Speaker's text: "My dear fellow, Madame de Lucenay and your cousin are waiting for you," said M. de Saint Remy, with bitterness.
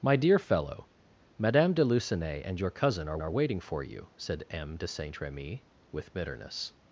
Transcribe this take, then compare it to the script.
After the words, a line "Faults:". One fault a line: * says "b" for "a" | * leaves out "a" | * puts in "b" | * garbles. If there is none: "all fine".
"My dear fellow, Madame de Lucenay and your cousin are are waiting for you," said M. de Saint Remy, with bitterness.
Faults:
* puts in "are"